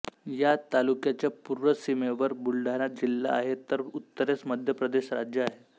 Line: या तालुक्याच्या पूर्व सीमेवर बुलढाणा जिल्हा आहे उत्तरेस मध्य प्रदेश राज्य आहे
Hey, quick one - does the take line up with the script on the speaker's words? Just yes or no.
no